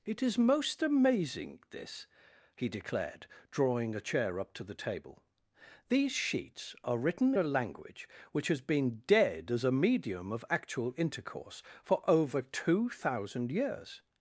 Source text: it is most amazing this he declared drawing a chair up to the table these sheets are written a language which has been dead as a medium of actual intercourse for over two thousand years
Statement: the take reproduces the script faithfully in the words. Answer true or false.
true